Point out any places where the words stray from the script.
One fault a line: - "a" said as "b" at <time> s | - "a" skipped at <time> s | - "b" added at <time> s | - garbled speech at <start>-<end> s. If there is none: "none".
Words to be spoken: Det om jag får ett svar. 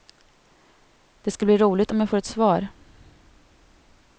- "ska bli roligt" added at 1.3 s